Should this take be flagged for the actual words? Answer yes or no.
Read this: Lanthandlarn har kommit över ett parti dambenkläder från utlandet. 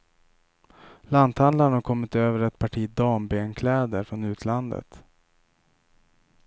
no